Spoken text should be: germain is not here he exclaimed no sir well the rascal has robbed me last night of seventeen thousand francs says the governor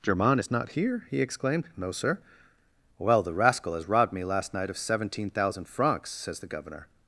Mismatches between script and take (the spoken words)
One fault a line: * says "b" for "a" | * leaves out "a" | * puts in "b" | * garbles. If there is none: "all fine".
all fine